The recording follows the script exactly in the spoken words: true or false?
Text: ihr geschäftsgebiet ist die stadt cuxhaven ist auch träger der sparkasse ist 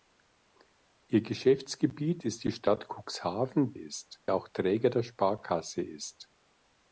true